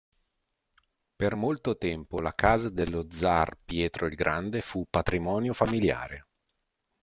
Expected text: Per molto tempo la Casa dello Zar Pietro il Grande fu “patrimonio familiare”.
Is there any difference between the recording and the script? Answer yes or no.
no